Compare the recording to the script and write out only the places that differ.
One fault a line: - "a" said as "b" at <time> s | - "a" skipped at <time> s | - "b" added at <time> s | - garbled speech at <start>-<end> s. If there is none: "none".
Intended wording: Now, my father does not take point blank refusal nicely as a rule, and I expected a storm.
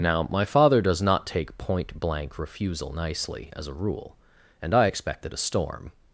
none